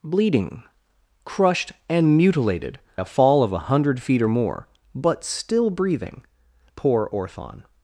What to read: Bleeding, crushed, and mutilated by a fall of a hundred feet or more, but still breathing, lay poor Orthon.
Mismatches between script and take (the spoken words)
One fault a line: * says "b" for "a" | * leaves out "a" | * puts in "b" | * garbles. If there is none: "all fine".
* leaves out "by"
* leaves out "lay"